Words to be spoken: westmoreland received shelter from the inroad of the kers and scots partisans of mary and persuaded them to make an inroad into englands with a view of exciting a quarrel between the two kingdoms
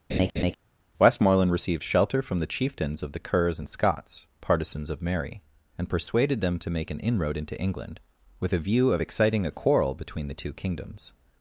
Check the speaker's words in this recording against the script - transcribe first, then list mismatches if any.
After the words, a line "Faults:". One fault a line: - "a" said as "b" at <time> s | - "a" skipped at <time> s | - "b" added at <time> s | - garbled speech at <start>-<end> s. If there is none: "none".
westmoreland received shelter from the chieftains of the kers and scots partisans of mary and persuaded them to make an inroad into england with a view of exciting a quarrel between the two kingdoms
Faults:
- "inroad" said as "chieftains" at 2.5 s
- "englands" said as "england" at 7.6 s